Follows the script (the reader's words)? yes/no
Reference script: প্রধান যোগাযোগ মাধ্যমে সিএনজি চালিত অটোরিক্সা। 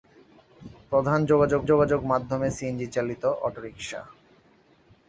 no